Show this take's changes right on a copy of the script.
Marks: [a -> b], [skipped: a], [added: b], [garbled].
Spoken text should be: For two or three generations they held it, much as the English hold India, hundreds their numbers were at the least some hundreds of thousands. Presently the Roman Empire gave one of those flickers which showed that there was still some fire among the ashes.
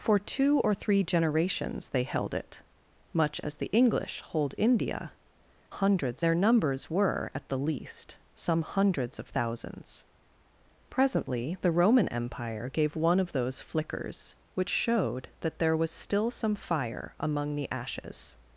For two or three generations they held it, much as the English hold India, hundreds their numbers were at the least some hundreds of thousands. Presently the Roman Empire gave one of those flickers which showed that there was still some fire among the ashes.